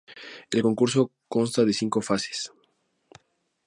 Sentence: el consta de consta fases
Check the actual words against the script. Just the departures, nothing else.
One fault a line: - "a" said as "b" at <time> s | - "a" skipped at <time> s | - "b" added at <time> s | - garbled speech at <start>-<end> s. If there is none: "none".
- "concurso" added at 0.6 s
- "consta" said as "cinco" at 1.7 s